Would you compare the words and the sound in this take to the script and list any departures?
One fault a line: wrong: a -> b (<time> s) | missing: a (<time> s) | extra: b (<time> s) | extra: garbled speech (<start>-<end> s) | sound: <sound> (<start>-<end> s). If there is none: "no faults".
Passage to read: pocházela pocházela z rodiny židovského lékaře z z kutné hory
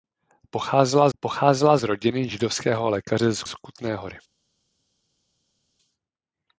no faults